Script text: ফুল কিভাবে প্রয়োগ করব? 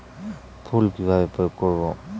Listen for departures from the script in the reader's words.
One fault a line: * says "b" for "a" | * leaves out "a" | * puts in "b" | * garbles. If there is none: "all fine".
all fine